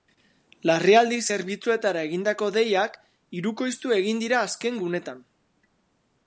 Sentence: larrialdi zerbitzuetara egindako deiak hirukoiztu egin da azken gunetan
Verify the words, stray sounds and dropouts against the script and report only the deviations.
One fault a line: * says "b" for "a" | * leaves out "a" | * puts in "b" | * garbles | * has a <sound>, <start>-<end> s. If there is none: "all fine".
* says "dira" for "da"